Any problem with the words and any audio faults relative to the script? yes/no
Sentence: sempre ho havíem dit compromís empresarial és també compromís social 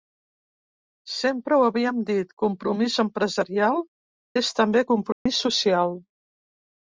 yes